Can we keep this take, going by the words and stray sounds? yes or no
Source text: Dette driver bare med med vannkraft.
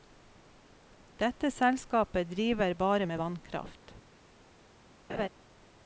no